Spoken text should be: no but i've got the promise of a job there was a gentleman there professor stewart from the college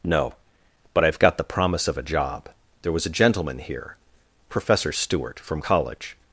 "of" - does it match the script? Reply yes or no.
yes